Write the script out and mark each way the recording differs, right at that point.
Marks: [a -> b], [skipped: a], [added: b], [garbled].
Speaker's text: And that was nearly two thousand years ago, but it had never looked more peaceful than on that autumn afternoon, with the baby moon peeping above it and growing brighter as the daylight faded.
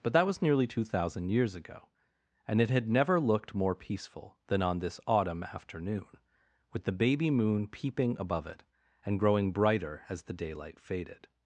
[And -> But] that was nearly two thousand years ago, [but -> and] it had never looked more peaceful than on [that -> this] autumn afternoon, with the baby moon peeping above it and growing brighter as the daylight faded.